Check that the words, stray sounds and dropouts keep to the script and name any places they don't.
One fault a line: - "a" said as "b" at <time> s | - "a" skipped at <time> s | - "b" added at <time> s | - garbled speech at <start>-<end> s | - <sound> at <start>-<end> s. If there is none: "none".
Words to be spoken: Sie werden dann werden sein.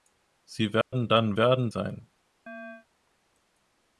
- dropout at 0.8-0.9 s
- chirp at 2.5-2.9 s